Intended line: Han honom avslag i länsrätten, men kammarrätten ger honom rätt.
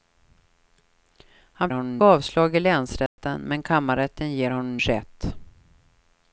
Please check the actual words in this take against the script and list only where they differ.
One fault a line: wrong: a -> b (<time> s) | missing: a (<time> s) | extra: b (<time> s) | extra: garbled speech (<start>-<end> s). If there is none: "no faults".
no faults